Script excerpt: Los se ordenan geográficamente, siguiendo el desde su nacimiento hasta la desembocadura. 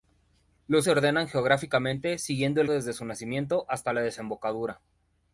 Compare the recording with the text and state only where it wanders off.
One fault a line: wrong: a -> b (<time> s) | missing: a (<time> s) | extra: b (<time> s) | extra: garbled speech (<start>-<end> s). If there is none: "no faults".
no faults